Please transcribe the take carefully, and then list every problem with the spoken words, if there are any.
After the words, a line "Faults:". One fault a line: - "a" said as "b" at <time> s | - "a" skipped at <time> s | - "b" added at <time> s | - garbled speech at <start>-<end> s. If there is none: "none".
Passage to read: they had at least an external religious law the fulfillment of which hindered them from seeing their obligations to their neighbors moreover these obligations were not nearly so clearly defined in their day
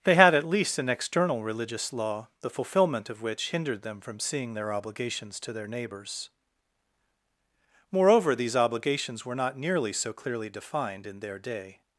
they had at least an external religious law the fulfillment of which hindered them from seeing their obligations to their neighbors moreover these obligations were not nearly so clearly defined in their day
Faults:
none